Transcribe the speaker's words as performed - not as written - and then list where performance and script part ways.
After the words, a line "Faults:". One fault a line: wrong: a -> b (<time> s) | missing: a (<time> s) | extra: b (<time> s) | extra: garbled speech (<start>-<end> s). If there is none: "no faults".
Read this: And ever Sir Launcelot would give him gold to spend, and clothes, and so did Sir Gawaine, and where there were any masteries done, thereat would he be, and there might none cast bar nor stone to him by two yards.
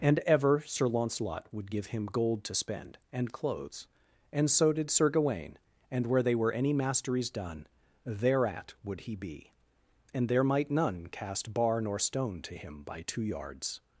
And ever Sir Launcelot would give him gold to spend, and clothes, and so did Sir Gawaine, and where they were any masteries done, thereat would he be, and there might none cast bar nor stone to him by two yards.
Faults:
wrong: there -> they (6.2 s)